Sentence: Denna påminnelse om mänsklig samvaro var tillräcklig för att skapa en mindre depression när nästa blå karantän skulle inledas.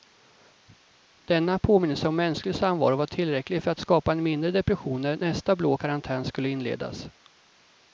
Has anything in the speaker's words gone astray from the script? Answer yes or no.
no